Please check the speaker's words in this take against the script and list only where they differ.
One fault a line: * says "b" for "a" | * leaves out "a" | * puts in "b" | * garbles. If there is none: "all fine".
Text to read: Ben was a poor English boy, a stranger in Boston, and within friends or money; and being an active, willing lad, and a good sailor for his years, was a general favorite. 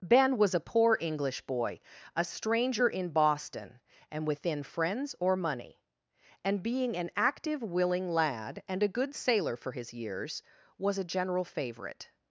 all fine